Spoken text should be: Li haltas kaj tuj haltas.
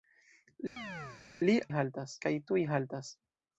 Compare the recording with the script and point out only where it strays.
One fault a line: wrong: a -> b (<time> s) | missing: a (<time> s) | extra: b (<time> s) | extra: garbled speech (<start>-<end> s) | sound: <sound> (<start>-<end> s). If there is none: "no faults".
sound: chirp (0.8-1.2 s)